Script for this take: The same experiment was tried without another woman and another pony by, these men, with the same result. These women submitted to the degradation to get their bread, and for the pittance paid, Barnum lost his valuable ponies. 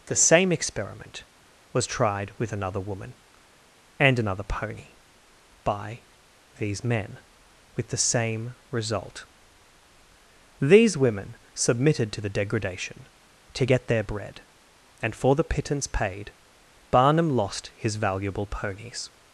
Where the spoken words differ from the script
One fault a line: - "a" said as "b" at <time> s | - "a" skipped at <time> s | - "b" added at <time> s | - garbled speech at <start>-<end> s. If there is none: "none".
- "without" said as "with" at 2.4 s